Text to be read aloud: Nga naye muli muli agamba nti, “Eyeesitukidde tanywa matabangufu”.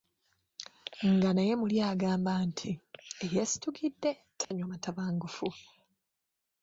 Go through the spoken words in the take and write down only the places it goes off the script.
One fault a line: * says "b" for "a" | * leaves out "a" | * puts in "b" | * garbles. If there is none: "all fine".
* leaves out "muli"